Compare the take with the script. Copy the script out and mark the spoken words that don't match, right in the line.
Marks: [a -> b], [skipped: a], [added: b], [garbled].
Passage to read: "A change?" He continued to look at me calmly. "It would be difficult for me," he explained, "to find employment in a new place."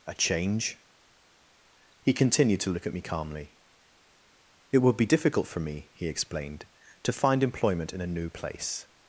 "A change?" He continued to look at me calmly. "It would be difficult for me," he explained, "to find employment in a new place."